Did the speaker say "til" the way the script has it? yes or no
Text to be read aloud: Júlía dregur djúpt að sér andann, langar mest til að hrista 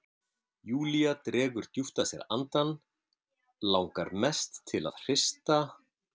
yes